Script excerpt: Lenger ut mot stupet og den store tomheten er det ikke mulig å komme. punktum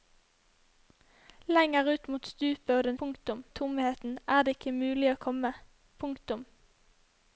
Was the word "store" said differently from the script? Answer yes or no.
yes